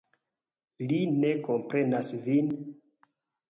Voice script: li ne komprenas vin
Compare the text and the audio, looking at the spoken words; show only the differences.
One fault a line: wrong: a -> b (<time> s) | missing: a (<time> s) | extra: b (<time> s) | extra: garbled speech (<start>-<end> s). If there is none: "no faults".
no faults